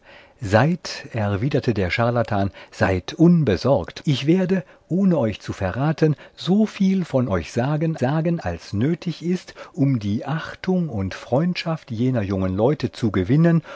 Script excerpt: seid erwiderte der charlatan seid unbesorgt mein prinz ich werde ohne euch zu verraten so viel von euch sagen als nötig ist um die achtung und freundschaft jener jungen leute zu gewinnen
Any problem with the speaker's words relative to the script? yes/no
yes